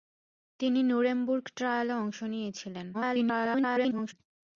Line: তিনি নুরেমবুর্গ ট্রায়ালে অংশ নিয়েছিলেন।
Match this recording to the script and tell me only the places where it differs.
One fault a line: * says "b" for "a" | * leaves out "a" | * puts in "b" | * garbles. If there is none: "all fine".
* garbles